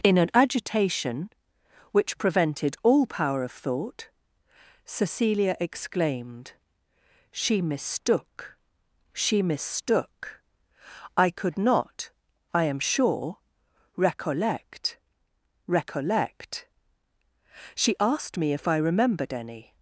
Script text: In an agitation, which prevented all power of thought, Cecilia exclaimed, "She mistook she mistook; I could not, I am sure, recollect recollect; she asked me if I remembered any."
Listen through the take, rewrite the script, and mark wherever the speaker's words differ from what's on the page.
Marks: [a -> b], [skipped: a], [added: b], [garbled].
In an agitation, which prevented all power of thought, Cecilia exclaimed, "She mistook she mistook; I could not, I am sure, recollect recollect; she asked me if I remembered any."